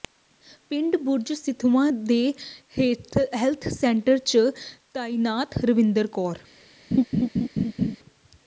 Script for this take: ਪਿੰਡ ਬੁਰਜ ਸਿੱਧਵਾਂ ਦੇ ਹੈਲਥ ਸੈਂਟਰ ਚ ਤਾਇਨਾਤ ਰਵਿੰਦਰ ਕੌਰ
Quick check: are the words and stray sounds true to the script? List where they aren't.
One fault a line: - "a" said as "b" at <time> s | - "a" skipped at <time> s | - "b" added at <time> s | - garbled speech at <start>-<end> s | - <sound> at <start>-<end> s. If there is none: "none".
- laugh at 6.9-8.0 s